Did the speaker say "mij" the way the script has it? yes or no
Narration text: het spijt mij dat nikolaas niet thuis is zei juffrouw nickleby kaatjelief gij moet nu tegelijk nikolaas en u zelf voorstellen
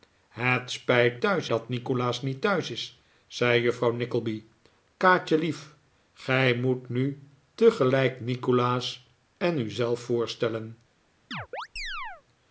no